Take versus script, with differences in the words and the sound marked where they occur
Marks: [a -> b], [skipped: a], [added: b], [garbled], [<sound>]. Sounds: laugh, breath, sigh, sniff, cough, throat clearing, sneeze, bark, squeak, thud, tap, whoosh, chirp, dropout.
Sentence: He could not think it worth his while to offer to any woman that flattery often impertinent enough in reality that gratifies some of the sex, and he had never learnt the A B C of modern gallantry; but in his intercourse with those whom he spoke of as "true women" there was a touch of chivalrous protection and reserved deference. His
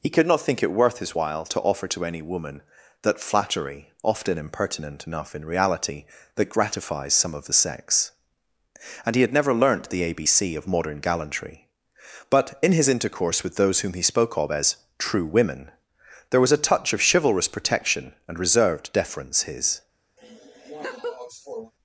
He could not think it worth his while to offer to any woman that flattery often impertinent enough in reality that gratifies some of the sex, and he had never learnt the A B C of modern gallantry; but in his intercourse with those whom he spoke of as "true women" there was a touch of chivalrous protection and reserved deference. His [laugh]